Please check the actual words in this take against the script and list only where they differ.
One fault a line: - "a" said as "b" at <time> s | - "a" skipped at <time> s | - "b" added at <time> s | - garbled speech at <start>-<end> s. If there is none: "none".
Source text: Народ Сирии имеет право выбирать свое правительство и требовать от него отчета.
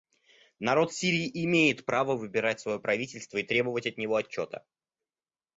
none